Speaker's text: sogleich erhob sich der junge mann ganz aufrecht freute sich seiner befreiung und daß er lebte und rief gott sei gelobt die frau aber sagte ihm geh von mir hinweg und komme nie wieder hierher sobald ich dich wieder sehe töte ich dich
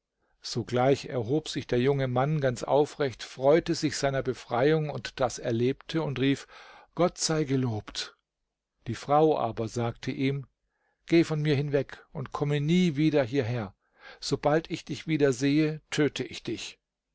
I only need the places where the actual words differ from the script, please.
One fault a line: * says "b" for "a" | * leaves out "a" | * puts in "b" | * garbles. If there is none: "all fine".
all fine